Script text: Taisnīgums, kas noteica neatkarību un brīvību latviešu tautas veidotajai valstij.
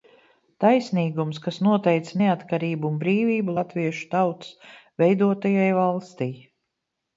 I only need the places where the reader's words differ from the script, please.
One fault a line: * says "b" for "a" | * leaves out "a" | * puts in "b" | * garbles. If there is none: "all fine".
all fine